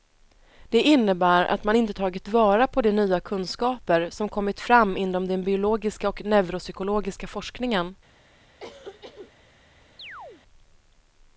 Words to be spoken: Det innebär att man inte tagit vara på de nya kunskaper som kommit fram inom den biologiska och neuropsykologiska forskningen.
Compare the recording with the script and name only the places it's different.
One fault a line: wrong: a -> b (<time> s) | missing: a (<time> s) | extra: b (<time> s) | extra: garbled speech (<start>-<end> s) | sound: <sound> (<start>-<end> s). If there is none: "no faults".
sound: cough (8.6-9.3 s)
sound: chirp (10.0-10.4 s)